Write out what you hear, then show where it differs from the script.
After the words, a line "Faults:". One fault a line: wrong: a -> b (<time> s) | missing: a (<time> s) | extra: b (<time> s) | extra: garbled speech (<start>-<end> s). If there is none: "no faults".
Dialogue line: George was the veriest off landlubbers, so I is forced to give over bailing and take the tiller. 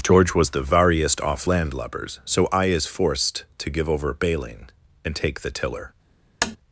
George was the veriest off landlubbers, so I is forced to give over bailing and take the tiller.
Faults:
no faults